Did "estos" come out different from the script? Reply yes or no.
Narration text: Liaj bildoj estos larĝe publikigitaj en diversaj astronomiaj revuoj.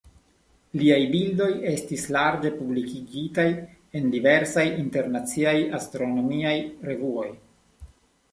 yes